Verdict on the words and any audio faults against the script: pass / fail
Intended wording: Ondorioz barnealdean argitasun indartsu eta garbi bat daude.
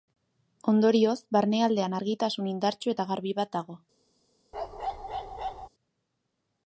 fail